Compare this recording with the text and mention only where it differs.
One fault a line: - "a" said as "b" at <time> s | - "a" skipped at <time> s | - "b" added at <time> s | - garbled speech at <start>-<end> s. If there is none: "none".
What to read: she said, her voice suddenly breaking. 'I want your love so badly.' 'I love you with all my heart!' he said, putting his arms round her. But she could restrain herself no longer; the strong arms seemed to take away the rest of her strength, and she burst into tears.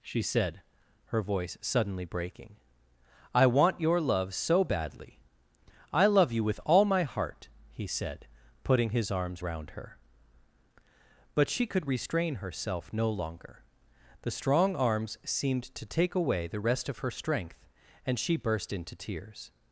none